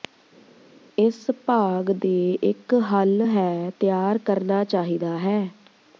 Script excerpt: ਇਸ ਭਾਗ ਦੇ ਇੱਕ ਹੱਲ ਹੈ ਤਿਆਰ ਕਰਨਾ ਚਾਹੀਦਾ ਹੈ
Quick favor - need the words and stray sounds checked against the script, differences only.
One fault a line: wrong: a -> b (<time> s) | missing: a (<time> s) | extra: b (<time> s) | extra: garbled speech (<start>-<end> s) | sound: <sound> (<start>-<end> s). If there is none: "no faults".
no faults